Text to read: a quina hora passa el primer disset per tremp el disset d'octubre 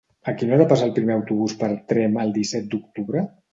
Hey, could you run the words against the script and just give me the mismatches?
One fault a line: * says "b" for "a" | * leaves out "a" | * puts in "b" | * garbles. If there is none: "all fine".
* says "autobús" for "disset"